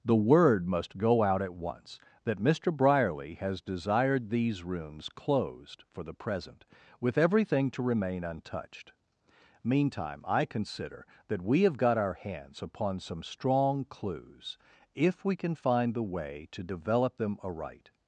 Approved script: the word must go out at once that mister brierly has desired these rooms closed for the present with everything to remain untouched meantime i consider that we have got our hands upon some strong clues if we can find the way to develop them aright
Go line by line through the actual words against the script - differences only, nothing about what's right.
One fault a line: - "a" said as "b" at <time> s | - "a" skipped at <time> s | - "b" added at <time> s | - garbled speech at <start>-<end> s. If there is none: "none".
none